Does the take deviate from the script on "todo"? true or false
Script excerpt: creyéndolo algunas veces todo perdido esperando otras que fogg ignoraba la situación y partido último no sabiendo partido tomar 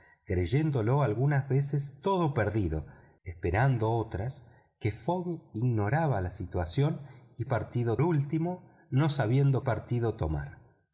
false